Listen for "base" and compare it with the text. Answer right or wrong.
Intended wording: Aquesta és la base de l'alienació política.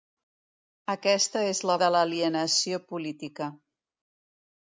wrong